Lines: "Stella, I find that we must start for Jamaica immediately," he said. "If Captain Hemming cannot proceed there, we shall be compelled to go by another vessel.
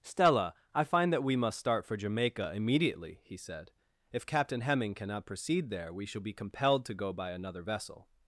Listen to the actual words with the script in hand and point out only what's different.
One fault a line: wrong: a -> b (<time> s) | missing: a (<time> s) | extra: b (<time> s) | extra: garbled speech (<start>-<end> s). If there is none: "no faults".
no faults